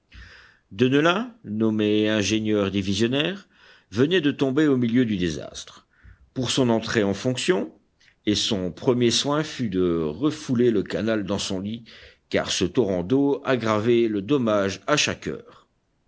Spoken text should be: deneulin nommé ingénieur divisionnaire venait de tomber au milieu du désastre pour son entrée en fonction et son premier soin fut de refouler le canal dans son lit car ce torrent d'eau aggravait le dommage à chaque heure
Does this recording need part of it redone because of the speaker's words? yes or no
no